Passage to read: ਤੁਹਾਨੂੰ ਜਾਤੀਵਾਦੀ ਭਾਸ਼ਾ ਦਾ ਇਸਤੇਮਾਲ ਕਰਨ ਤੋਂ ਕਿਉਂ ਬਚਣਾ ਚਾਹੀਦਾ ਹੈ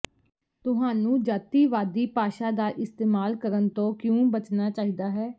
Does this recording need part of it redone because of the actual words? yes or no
no